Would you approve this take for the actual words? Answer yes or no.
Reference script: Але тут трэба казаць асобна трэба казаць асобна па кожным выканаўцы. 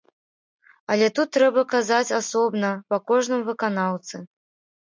no